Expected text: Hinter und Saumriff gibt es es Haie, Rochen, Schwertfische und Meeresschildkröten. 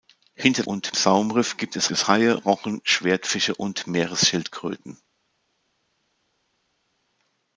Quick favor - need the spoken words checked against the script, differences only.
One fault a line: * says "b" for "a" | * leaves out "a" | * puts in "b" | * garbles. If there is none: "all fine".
all fine